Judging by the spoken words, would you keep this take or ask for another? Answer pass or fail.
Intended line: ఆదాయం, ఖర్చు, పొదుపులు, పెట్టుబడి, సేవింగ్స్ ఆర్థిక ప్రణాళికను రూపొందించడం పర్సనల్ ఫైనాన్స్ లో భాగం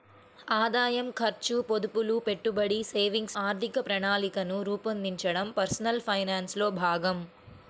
pass